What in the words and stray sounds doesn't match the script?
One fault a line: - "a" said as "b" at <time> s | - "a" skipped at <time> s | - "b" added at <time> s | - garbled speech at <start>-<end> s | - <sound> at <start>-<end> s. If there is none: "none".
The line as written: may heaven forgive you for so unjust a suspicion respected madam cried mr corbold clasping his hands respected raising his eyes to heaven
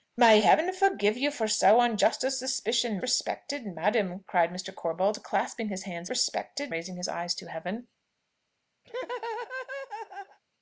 - laugh at 8.8-10.4 s